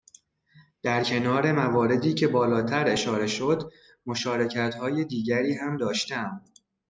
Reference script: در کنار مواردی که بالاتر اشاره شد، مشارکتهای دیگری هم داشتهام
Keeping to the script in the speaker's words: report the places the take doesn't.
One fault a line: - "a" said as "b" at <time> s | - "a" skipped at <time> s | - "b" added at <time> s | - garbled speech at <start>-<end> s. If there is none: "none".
none